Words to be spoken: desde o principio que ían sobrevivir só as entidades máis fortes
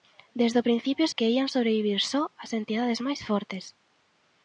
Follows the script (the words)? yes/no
yes